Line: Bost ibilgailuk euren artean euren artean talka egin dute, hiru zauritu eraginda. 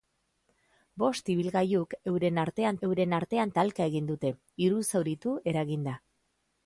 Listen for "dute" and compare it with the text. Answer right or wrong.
right